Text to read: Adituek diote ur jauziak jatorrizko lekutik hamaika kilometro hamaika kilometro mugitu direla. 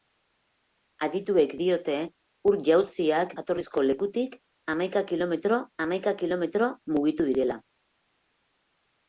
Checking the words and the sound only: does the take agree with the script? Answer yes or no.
yes